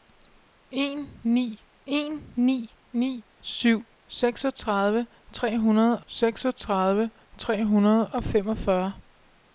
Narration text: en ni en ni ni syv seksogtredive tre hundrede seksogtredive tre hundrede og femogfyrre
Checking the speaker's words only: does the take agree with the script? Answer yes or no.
yes